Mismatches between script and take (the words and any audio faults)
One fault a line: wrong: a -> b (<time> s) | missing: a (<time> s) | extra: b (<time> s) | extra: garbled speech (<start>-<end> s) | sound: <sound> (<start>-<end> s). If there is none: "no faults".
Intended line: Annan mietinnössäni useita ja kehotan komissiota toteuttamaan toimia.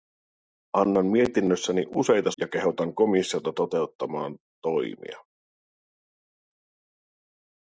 no faults